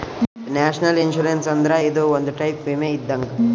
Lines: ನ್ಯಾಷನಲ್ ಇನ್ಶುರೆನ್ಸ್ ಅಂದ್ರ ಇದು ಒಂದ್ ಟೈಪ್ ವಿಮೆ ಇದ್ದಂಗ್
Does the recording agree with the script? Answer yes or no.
yes